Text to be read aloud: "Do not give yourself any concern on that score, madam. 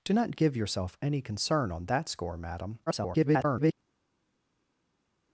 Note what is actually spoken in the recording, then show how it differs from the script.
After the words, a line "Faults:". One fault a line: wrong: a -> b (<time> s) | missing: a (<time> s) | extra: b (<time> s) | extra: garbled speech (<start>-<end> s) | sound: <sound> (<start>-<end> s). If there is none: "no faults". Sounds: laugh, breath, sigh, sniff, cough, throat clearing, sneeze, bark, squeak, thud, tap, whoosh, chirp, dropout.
"Do not give yourself any concern on that score, madam. [garbled]
Faults:
extra: garbled speech (2.9-3.7 s)